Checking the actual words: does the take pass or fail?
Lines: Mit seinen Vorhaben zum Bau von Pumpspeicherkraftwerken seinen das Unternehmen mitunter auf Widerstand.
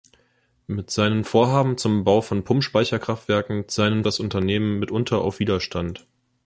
pass